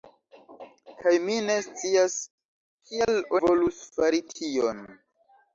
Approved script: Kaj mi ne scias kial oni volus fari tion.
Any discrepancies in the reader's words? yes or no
yes